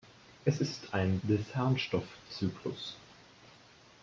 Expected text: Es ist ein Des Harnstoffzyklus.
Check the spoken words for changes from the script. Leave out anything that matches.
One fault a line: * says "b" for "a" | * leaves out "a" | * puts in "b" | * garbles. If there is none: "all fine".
all fine